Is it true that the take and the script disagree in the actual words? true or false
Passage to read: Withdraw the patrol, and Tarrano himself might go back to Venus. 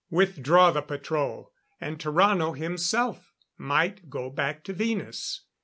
false